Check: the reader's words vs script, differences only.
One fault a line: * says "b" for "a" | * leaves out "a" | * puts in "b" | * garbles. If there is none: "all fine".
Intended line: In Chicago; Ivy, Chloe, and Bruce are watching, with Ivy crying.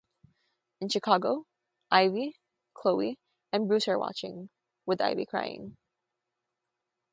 all fine